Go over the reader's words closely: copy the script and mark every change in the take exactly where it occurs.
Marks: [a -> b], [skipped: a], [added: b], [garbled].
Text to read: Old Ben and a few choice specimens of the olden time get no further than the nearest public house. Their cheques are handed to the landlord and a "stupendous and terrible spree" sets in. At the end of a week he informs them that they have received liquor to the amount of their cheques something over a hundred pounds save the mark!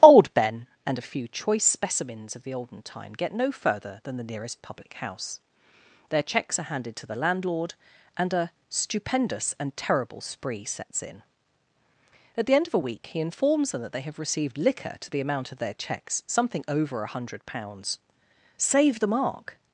Old Ben and a few choice specimens of the olden time get no further than the nearest public house. Their cheques are handed to the landlord and a "stupendous and terrible spree" sets in. At the end of a week he informs them that they have received liquor to the amount of their cheques something over a hundred pounds save the mark!